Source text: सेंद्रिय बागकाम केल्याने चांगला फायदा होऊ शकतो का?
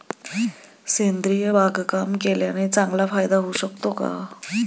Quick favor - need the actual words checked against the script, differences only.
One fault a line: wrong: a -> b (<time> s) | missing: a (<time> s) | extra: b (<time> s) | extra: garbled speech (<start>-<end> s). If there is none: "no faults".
no faults